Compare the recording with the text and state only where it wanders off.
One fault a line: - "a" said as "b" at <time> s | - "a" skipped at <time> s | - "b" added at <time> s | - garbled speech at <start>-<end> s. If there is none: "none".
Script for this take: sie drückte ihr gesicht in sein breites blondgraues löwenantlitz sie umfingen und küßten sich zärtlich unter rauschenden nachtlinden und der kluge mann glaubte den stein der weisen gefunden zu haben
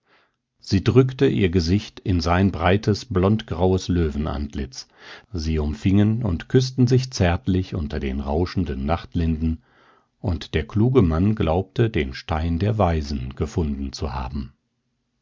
- "den" added at 8.0 s